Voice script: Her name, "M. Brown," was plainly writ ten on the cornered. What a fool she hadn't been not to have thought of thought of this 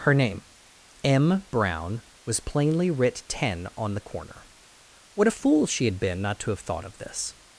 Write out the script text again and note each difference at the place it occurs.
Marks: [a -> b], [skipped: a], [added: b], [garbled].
Her name, "M. Brown," was plainly writ ten on the [cornered. -> corner] What a fool she [hadn't -> had] been not to have thought of [skipped: thought of] this